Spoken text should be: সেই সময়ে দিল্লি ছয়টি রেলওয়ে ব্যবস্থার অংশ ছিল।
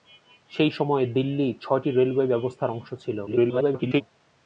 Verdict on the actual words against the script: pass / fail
fail